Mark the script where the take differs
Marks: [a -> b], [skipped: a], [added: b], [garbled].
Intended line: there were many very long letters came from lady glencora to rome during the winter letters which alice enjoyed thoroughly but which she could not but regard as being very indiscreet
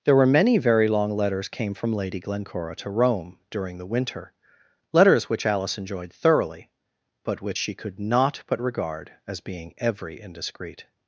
there were many very long letters came from lady glencora to rome during the winter letters which alice enjoyed thoroughly but which she could not but regard as being [very -> every] indiscreet